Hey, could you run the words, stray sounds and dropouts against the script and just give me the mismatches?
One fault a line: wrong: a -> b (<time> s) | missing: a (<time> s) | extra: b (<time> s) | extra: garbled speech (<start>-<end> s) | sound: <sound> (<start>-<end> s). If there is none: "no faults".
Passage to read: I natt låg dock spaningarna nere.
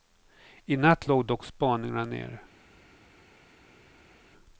no faults